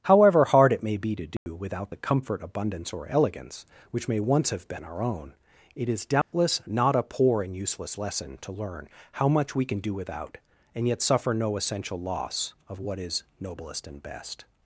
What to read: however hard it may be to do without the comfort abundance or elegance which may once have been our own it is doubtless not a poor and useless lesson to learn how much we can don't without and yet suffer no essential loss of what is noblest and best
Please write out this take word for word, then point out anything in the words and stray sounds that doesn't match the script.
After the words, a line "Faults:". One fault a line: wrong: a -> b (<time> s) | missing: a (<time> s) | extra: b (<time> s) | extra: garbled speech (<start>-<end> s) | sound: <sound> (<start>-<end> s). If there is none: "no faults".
however hard it may be to do without the comfort abundance or elegance which may once have been our own it is doubtless not a poor and useless lesson to learn how much we can do without and yet suffer no essential loss of what is noblest and best
Faults:
sound: dropout (1.4-1.5 s)
sound: dropout (6.2-6.3 s)
wrong: don't -> do (9.8 s)